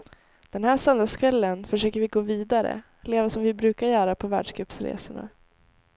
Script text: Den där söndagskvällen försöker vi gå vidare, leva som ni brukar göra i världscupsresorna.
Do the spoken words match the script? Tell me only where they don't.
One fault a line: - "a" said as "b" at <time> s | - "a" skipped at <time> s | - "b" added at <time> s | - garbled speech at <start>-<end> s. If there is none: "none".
- "där" said as "här" at 0.6 s
- "ni" said as "vi" at 3.4 s
- "i" said as "på" at 4.1 s